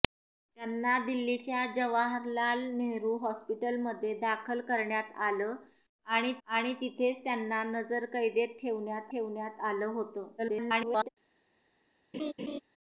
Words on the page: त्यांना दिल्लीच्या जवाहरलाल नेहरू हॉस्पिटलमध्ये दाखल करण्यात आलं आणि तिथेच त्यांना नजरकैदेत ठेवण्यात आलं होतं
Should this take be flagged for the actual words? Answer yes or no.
yes